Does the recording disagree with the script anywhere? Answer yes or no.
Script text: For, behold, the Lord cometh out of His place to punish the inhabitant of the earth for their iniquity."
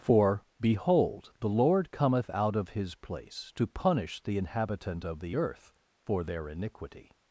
no